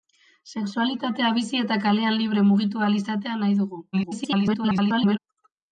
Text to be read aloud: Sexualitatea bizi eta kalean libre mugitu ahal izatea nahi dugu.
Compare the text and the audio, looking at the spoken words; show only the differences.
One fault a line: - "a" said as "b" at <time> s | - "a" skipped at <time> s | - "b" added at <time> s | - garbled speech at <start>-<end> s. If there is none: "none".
- garbled speech at 3.9-5.2 s